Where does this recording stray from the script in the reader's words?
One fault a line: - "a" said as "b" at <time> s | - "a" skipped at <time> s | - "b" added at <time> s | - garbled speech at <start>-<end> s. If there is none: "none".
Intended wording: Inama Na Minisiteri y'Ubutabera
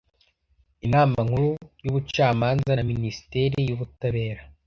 - "Nkuru y'Ubucamanza" added at 1.2 s